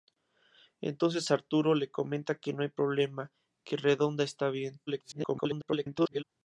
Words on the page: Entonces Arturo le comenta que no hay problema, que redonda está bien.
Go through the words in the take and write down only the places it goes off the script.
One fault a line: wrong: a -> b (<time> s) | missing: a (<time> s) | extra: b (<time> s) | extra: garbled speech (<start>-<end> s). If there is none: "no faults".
extra: garbled speech (4.9-6.2 s)